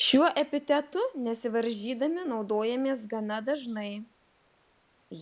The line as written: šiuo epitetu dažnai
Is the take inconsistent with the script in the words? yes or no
yes